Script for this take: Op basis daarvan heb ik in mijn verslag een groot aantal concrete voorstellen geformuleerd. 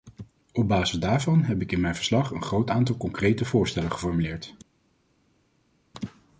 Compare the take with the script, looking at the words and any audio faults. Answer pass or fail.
pass